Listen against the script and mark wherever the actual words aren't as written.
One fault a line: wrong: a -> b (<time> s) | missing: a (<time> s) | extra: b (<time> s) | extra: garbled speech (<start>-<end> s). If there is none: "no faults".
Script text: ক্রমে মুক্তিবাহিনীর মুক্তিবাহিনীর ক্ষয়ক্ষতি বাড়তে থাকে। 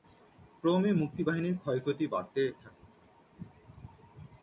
missing: মুক্তিবাহিনীর (1.6 s)